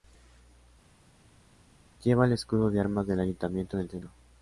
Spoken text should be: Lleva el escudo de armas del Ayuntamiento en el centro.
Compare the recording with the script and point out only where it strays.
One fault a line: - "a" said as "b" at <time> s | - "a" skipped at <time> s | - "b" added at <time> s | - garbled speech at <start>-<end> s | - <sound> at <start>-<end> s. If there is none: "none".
none